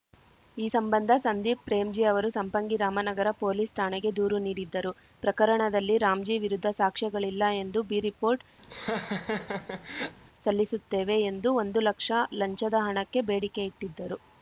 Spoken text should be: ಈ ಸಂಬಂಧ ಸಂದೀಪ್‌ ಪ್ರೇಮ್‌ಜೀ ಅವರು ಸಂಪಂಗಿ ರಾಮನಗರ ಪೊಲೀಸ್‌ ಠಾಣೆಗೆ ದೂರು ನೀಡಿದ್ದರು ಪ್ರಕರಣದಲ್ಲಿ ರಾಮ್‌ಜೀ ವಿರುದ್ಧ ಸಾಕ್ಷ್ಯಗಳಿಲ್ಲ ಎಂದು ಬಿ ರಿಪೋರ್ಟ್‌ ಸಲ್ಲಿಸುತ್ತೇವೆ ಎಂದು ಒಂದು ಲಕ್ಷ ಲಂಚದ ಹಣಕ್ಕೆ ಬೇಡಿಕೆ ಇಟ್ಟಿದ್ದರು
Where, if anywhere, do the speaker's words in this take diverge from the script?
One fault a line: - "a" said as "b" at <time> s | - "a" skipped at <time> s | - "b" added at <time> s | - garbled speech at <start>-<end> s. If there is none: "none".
none